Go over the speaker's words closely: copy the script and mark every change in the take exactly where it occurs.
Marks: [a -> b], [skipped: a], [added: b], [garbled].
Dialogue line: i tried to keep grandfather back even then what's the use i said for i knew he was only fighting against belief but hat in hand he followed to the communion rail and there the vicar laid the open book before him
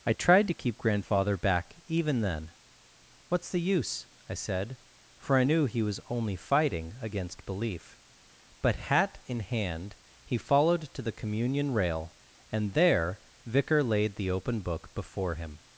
i tried to keep grandfather back even then what's the use i said for i knew he was only fighting against belief but hat in hand he followed to the communion rail and there [skipped: the] vicar laid the open book before him